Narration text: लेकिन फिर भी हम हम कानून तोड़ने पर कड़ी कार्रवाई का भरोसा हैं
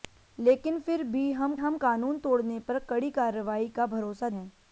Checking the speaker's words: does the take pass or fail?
pass